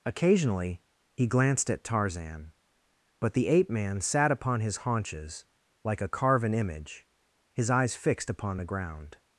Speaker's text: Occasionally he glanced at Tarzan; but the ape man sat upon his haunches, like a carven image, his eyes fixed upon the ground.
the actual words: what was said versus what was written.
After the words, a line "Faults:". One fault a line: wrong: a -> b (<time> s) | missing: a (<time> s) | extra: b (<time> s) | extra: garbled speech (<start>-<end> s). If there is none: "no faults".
Occasionally he glanced at Tarzan; but the ape man sat upon his haunches, like a carven image, his eyes fixed upon the ground.
Faults:
no faults